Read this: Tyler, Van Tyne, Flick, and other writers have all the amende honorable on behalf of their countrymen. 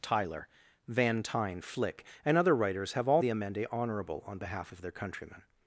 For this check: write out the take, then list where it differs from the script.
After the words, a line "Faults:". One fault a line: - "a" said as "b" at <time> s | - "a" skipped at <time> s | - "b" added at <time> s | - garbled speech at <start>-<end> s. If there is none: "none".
Tyler, Van Tyne, Flick, and other writers have all the amende honorable on behalf of their countrymen.
Faults:
none